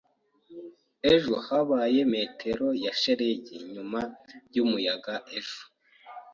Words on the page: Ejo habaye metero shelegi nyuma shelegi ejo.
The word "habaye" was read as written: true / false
true